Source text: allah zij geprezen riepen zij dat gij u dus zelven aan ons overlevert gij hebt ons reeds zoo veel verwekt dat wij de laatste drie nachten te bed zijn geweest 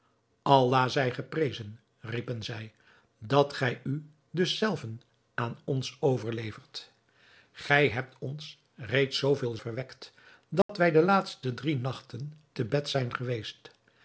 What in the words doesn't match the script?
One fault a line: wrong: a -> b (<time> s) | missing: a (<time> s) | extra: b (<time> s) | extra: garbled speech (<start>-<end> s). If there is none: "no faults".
no faults